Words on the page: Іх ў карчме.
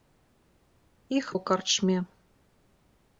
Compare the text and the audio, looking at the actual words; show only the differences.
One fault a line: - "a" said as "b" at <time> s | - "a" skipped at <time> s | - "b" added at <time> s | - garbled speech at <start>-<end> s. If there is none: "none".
none